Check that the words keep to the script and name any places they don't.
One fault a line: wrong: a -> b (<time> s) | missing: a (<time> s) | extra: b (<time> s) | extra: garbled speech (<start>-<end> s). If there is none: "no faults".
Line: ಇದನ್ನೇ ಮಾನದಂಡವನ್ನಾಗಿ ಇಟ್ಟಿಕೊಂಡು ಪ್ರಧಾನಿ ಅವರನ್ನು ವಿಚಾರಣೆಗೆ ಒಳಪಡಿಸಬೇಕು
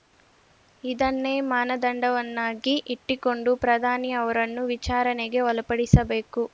no faults